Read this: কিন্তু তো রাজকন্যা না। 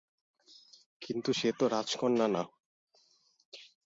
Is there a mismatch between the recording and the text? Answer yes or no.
yes